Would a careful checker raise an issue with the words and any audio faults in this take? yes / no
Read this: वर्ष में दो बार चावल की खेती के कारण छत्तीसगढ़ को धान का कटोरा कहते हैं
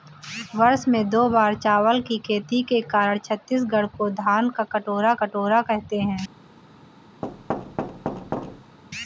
yes